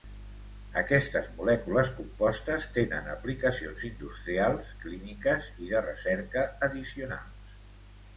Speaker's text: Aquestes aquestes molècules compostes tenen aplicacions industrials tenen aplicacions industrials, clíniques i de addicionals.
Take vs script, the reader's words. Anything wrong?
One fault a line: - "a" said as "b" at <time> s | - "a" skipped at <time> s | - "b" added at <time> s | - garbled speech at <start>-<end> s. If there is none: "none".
- "aquestes" skipped at 1.2 s
- "tenen aplicacions industrials" skipped at 4.7 s
- "recerca" added at 5.9 s